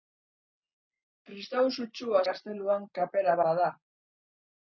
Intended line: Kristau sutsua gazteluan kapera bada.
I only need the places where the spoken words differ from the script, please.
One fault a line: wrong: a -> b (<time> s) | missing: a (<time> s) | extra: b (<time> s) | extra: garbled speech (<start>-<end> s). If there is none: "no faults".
no faults